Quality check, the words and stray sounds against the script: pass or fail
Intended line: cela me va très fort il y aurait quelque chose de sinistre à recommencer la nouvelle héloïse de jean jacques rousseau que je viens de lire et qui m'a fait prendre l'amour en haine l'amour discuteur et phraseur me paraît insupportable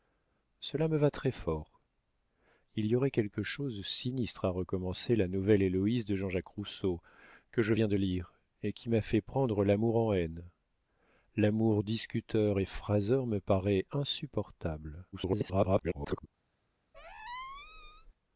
fail